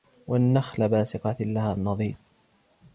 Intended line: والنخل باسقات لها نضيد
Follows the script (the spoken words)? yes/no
yes